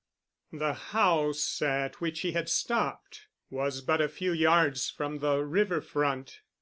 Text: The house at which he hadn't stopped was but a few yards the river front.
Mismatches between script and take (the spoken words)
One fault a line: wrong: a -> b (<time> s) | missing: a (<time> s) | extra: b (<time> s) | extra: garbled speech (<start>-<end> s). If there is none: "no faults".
wrong: hadn't -> had (2.3 s)
extra: from (4.9 s)